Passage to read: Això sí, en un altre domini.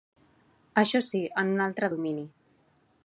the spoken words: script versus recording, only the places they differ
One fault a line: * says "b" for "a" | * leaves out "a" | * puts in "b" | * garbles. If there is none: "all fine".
all fine